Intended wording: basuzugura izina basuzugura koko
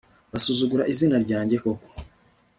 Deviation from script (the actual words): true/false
true